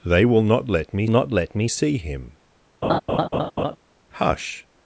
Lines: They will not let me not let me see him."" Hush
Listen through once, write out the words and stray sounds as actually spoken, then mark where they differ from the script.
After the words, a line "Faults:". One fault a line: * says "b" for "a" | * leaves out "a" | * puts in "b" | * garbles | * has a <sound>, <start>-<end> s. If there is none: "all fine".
They will not let me not let me see him."" Hush
Faults:
* has a laugh, 2.8-3.8 s